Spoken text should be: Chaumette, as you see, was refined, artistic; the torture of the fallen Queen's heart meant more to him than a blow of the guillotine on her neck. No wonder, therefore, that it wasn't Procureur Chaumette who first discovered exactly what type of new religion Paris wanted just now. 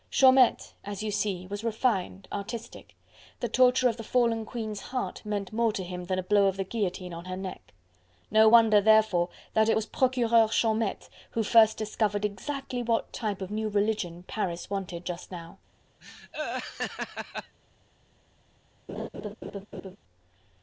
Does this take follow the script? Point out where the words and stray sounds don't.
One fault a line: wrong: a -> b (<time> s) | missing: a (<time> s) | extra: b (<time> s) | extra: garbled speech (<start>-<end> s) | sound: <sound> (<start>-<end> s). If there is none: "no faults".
wrong: wasn't -> was (9.7 s)
sound: laugh (16.0-17.6 s)
sound: laugh (18.9-20.0 s)